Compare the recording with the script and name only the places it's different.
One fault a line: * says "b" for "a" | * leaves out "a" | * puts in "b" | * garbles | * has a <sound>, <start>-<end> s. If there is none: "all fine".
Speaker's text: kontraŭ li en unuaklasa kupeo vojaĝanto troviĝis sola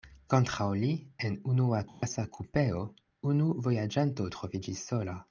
* has a dropout, 1.9-2.0 s
* puts in "unu"